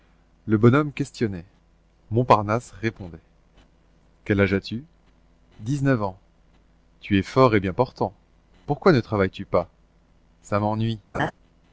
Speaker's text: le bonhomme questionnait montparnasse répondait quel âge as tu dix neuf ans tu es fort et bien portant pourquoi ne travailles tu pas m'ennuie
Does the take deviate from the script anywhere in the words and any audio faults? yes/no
yes